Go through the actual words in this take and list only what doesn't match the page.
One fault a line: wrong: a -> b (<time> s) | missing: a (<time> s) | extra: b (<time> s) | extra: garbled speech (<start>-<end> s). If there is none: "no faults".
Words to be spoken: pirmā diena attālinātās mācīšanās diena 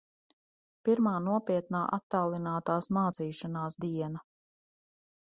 wrong: diena -> nopietnā (1.2 s)